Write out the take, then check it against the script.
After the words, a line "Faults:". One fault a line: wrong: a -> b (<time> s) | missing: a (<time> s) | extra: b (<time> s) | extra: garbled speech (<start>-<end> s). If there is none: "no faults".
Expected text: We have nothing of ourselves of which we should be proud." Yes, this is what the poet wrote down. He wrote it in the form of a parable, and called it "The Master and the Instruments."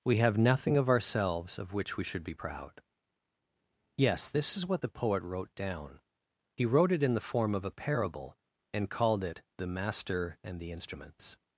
We have nothing of ourselves of which we should be proud." Yes, this is what the poet wrote down. He wrote it in the form of a parable, and called it "The Master and the Instruments."
Faults:
no faults